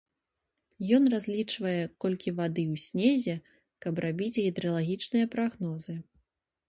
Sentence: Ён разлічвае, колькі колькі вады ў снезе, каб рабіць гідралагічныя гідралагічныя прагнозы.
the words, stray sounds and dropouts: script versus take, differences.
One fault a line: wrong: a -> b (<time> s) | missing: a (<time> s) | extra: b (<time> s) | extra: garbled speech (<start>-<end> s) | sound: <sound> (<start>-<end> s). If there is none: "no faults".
missing: колькі (2.3 s)
missing: гідралагічныя (5.2 s)